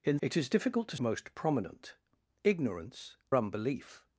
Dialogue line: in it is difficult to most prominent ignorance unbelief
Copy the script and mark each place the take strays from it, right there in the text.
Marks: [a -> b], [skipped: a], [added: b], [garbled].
in it is difficult to most prominent ignorance unbelief